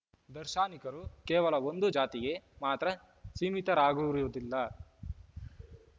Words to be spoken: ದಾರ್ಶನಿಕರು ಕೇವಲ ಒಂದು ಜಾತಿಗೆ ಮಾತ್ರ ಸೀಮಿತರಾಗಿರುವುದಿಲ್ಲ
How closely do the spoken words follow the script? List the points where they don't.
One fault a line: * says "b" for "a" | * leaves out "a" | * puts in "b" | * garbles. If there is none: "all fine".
all fine